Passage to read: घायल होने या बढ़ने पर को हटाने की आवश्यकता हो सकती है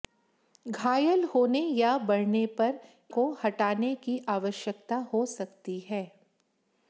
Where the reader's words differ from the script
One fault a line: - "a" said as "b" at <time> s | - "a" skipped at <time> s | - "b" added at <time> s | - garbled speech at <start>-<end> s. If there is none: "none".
none